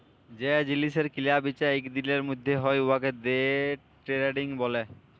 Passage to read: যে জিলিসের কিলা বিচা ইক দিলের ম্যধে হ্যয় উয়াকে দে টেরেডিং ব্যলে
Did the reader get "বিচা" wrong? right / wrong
right